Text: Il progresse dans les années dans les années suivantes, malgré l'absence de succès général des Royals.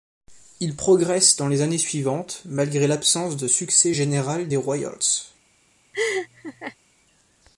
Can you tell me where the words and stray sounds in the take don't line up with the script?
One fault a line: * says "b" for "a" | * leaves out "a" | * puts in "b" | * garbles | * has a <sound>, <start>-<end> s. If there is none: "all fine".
* leaves out "dans les années"
* has a laugh, 5.9-6.8 s